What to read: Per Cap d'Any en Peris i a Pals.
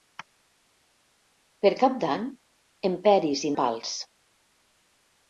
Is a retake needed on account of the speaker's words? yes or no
no